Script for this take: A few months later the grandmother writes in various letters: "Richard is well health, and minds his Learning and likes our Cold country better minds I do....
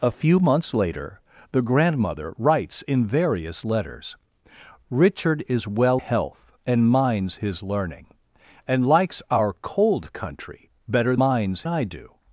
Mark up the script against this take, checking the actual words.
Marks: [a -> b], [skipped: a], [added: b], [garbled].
A few months later the grandmother writes in various letters: "Richard is well health, and minds his Learning and likes our Cold country better minds I do....